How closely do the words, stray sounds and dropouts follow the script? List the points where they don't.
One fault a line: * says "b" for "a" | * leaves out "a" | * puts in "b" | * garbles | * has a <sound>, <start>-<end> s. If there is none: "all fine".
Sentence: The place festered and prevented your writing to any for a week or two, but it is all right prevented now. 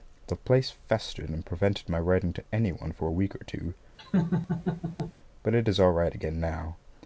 * says "my" for "your"
* puts in "one"
* has a laugh, 4.0-5.1 s
* says "again" for "prevented"